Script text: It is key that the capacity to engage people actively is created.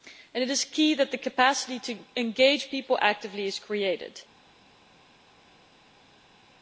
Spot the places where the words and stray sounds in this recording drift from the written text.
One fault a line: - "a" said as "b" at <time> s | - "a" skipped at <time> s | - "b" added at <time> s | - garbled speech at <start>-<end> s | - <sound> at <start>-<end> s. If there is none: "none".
none